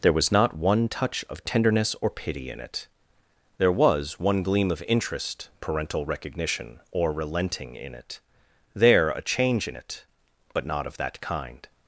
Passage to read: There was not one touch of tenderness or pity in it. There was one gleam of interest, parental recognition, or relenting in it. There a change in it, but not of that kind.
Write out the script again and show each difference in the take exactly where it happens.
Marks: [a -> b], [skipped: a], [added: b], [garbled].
There was not one touch of tenderness or pity in it. There was one gleam of interest, parental recognition, or relenting in it. There a change in it, but not of that kind.